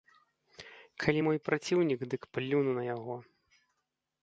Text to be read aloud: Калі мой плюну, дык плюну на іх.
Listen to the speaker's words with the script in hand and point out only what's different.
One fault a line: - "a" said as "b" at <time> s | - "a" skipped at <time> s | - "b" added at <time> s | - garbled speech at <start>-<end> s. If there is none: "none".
- "плюну" said as "праціўнік" at 1.5 s
- "іх" said as "яго" at 2.9 s